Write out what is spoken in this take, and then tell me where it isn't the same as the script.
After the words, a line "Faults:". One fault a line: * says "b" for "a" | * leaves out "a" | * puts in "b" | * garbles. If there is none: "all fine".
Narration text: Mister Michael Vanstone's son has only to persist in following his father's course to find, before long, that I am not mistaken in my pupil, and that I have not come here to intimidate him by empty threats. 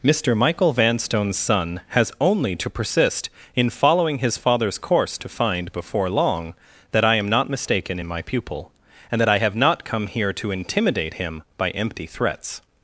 Mister Michael Vanstone's son has only to persist in following his father's course to find, before long, that I am not mistaken in my pupil, and that I have not come here to intimidate him by empty threats.
Faults:
all fine